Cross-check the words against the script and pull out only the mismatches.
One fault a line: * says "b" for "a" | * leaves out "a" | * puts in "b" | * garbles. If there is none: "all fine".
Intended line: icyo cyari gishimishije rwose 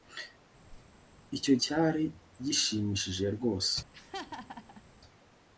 all fine